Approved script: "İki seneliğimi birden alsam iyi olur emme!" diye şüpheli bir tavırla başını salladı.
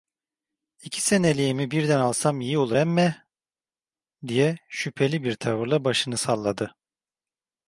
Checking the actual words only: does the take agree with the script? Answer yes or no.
yes